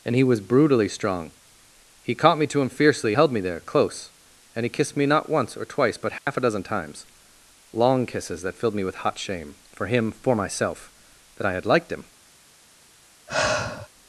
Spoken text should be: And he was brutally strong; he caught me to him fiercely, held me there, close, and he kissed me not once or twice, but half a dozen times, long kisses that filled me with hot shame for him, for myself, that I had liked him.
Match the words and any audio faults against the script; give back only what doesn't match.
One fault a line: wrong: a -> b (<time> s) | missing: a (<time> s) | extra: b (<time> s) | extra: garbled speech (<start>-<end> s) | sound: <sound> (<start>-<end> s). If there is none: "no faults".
sound: dropout (6.2-6.3 s)
sound: sigh (13.3-13.9 s)